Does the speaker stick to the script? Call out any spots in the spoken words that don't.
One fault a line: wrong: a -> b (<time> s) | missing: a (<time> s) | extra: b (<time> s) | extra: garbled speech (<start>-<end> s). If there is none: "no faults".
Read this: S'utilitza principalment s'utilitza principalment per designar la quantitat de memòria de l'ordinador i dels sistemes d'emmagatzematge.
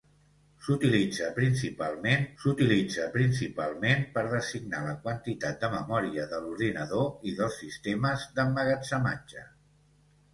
no faults